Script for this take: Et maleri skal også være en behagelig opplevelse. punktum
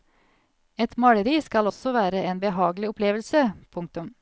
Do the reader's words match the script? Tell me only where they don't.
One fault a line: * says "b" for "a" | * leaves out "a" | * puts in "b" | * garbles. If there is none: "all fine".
all fine